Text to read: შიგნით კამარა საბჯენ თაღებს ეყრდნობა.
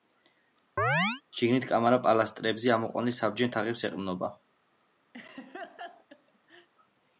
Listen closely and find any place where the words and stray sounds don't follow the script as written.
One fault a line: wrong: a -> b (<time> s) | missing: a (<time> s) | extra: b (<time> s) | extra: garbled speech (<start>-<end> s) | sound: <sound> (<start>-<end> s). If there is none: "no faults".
sound: chirp (0.8-1.2 s)
extra: პილასტრებზე ამოყვანილ (2.1 s)
sound: laugh (5.1-6.7 s)